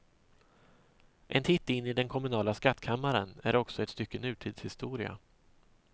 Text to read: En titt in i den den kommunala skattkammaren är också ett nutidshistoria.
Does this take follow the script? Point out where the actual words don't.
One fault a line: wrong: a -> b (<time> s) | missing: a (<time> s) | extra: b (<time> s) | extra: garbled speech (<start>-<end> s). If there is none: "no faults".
missing: den (2.1 s)
extra: stycke (3.9 s)